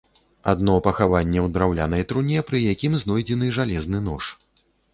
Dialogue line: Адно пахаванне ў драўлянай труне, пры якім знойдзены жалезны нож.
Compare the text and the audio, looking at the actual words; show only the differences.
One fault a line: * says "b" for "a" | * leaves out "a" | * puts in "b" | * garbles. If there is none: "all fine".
all fine